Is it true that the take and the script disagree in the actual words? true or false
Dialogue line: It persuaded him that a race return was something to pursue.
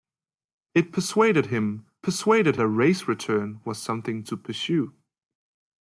true